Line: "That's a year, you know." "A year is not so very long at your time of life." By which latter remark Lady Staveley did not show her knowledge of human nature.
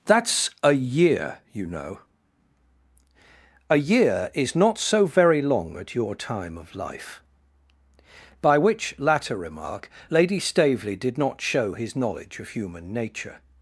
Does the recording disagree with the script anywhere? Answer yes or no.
yes